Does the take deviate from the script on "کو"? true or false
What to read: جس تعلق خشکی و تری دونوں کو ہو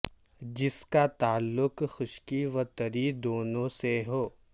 true